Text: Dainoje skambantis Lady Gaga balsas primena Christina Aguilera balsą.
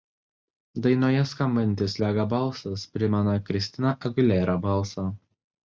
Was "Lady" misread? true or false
true